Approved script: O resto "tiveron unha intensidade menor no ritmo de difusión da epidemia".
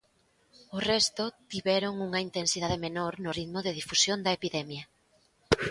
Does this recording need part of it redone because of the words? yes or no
no